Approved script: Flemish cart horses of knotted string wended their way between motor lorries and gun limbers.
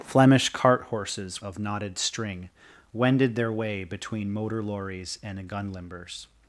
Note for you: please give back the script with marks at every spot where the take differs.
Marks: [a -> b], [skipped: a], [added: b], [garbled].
Flemish cart horses of knotted string wended their way between motor lorries and gun limbers.